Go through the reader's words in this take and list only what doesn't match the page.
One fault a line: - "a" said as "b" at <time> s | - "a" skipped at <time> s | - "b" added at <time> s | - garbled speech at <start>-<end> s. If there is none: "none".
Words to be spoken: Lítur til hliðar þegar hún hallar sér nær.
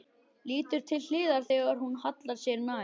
none